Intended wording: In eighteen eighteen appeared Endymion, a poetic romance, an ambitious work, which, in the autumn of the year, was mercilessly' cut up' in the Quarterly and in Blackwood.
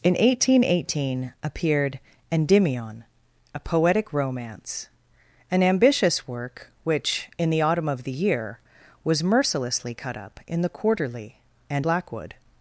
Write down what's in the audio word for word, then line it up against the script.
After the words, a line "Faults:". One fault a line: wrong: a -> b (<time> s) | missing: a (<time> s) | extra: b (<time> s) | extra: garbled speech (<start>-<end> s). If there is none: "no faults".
In eighteen eighteen appeared Endymion, a poetic romance, an ambitious work, which, in the autumn of the year, was mercilessly' cut up' in the Quarterly and Blackwood.
Faults:
missing: in (11.9 s)